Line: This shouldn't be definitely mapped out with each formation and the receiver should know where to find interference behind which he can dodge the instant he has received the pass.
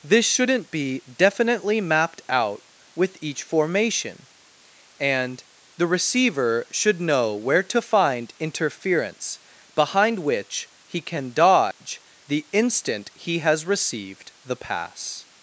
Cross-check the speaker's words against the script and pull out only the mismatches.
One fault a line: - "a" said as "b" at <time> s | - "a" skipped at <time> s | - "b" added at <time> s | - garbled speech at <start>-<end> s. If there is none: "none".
none